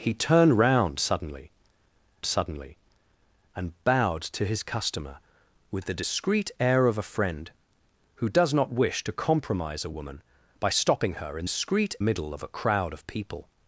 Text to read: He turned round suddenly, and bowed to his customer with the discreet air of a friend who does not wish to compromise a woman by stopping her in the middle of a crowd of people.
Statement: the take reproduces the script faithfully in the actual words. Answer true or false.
false